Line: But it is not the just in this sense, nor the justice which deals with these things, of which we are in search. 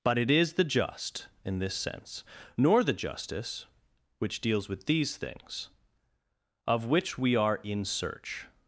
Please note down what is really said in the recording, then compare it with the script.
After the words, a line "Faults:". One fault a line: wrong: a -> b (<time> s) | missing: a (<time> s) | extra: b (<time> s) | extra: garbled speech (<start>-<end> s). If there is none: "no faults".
But it is the just in this sense, nor the justice which deals with these things, of which we are in search.
Faults:
missing: not (0.5 s)